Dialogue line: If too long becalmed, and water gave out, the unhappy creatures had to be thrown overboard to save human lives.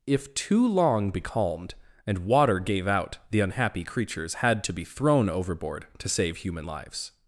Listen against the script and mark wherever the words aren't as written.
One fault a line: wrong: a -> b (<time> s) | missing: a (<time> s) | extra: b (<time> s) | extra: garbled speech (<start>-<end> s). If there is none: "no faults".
no faults